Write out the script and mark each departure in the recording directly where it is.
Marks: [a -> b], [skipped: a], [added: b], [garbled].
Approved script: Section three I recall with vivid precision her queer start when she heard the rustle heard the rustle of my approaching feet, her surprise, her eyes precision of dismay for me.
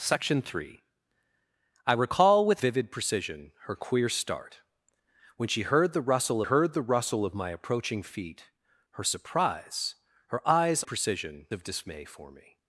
Section three I recall with vivid precision her queer start when she heard the rustle heard the rustle of my approaching feet, her surprise, her eyes precision of dismay for me.